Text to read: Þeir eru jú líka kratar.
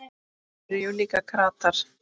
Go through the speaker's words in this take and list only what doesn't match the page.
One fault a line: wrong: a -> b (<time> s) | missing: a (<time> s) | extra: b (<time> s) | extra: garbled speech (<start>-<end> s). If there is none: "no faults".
no faults